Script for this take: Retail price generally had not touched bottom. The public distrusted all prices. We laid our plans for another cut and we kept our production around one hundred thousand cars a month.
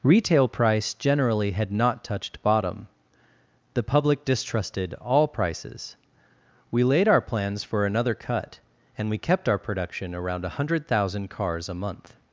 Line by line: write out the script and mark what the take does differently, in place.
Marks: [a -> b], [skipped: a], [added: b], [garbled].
Retail price generally had not touched bottom. The public distrusted all prices. We laid our plans for another cut and we kept our production around one hundred thousand cars a month.